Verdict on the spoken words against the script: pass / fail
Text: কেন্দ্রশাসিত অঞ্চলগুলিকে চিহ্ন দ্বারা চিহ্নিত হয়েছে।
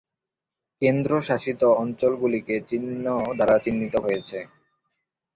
pass